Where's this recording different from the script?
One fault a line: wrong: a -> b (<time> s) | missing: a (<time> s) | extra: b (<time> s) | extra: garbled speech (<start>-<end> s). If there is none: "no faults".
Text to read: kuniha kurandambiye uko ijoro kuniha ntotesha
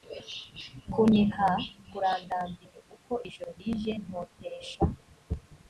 wrong: kuniha -> rije (3.6 s)